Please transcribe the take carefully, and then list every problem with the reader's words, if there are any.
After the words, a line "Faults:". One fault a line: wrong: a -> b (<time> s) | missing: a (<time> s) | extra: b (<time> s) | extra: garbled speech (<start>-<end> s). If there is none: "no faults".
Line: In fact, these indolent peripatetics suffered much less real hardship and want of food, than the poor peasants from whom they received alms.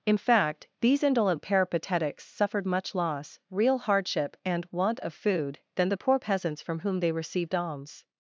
In fact, these indolent peripatetics suffered much loss real hardship and want of food, than the poor peasants from whom they received alms.
Faults:
wrong: less -> loss (2.9 s)